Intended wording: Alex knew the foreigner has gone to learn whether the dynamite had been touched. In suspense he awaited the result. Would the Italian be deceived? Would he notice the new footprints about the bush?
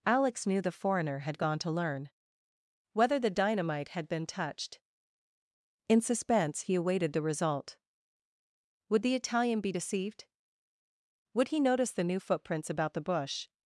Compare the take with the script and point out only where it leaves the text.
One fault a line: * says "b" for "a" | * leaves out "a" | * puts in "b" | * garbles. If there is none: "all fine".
* says "had" for "has"